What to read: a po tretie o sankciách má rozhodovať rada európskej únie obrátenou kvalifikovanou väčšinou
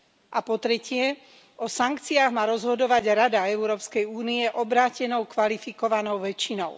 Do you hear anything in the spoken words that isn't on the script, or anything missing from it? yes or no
no